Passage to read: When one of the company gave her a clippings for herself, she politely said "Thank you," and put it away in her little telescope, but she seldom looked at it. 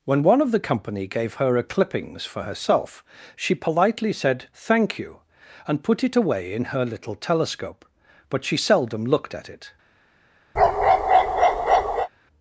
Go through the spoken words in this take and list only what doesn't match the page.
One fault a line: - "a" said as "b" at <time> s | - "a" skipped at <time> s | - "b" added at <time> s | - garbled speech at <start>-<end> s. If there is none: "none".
none